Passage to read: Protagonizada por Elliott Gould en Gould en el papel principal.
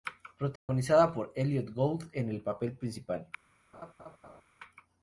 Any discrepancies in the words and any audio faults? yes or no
yes